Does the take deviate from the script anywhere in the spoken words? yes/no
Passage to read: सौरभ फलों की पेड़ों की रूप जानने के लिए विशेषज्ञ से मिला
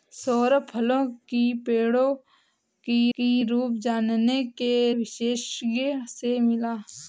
yes